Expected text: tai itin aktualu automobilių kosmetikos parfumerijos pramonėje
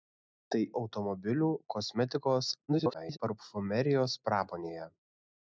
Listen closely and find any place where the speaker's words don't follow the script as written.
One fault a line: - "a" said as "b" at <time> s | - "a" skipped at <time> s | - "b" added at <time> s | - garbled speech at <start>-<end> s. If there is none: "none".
- "itin aktualu" skipped at 0.6 s
- garbled speech at 2.7-3.2 s